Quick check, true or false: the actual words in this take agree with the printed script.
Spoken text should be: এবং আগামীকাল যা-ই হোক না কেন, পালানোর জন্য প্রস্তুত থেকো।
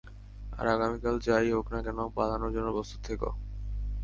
false